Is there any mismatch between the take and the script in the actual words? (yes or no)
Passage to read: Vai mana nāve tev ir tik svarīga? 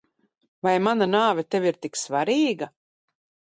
no